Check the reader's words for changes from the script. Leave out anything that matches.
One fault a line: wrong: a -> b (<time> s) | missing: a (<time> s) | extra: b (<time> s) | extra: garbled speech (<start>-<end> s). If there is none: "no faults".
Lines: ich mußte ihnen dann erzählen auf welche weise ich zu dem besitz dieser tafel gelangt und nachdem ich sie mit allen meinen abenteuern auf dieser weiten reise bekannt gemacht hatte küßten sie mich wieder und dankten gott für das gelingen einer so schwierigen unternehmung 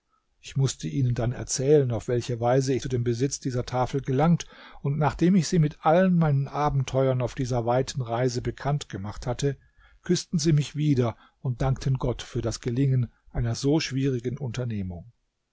no faults